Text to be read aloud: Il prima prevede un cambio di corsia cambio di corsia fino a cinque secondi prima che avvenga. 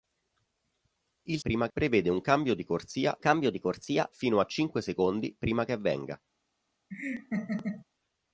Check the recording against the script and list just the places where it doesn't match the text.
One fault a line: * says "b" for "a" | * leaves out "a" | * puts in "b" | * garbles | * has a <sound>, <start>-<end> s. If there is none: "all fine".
* has a laugh, 6.9-7.9 s